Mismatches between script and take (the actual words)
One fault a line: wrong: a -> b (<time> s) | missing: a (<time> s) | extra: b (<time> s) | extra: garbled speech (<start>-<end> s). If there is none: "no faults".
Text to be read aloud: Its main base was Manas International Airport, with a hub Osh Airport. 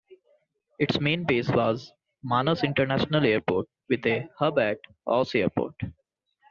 extra: at (4.6 s)